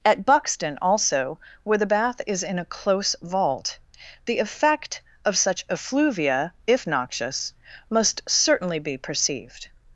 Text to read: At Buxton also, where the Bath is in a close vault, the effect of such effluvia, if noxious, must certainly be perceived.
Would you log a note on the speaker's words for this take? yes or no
no